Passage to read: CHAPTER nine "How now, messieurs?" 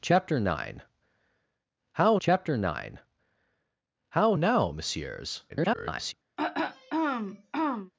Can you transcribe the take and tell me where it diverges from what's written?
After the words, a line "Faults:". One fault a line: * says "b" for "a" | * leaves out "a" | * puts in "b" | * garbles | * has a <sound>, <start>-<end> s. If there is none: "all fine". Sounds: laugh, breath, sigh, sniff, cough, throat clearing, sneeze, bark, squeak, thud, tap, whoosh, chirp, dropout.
CHAPTER nine "How chapter nine How now, messieurs?" [garbled]
Faults:
* puts in "chapter nine How"
* garbles
* has a throat clearing, 6.4-7.9 s